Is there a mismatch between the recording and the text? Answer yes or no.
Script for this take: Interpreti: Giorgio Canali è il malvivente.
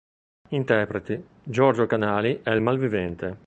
no